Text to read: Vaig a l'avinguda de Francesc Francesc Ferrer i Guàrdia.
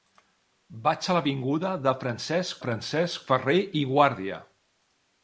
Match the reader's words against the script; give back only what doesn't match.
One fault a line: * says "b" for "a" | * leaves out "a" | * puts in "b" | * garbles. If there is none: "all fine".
all fine